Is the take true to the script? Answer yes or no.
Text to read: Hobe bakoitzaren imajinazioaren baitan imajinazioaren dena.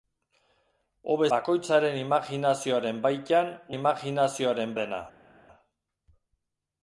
yes